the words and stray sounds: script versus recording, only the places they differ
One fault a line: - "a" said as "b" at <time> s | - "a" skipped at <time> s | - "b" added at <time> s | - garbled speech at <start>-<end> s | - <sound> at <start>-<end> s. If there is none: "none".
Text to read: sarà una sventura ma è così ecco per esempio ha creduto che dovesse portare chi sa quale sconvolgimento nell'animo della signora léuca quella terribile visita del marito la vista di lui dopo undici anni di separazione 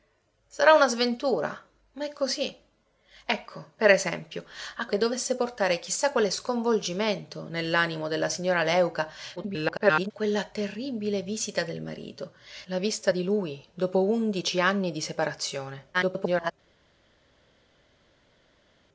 - "creduto" skipped at 4.9 s
- garbled speech at 9.4-10.1 s
- garbled speech at 15.9-16.5 s